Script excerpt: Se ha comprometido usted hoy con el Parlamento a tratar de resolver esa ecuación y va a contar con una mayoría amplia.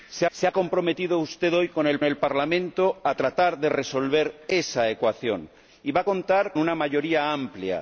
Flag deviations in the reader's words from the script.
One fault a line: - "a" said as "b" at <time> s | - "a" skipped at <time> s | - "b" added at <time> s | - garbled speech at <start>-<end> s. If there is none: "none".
- "se" added at 0.3 s
- "el" added at 2.0 s
- "con" skipped at 6.5 s